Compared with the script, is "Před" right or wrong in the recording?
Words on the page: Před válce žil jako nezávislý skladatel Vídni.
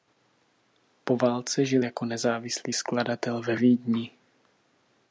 wrong